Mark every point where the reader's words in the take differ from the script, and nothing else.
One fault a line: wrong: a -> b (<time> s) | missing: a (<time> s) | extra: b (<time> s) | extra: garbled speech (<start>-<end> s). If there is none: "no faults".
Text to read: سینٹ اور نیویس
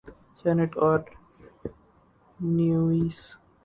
no faults